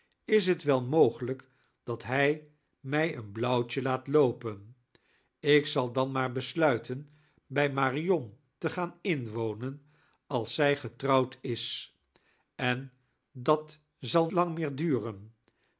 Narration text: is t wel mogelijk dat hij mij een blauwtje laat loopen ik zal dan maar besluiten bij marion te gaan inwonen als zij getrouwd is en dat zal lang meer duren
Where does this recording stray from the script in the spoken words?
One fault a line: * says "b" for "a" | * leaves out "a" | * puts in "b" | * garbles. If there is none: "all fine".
all fine